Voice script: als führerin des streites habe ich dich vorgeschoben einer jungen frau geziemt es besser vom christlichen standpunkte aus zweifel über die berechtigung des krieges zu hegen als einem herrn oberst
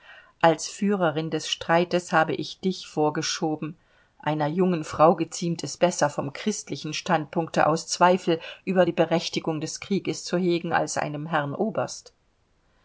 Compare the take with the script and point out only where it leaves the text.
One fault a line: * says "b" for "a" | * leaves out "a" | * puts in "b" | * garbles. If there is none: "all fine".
all fine